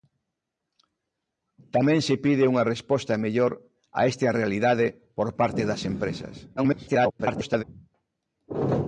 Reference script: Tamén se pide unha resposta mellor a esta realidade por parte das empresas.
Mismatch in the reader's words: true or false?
true